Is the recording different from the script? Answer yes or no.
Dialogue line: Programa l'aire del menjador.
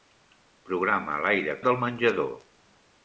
no